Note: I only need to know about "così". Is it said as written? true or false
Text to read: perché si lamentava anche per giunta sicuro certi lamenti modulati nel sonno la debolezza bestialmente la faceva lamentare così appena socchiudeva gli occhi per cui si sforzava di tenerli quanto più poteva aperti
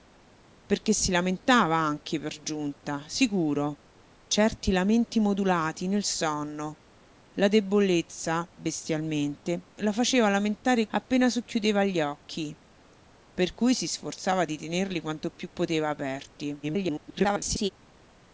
false